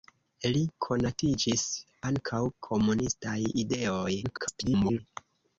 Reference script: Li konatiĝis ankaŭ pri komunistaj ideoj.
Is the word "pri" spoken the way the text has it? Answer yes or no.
no